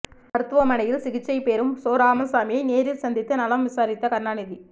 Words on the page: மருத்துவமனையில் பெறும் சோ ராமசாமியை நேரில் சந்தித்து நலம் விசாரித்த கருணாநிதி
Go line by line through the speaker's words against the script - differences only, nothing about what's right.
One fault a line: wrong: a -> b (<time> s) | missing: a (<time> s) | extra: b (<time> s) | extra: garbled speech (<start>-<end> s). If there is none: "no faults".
extra: சிகிச்சை (1.0 s)